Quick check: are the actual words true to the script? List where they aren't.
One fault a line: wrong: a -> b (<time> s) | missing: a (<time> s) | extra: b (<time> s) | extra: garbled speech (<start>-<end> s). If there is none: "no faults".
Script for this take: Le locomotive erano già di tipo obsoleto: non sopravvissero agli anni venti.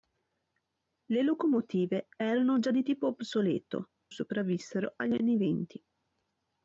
missing: non (3.9 s)